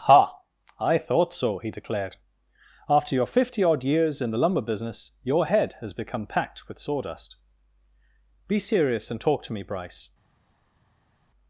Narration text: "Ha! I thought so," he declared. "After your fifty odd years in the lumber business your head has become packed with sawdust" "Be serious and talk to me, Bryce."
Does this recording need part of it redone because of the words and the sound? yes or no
no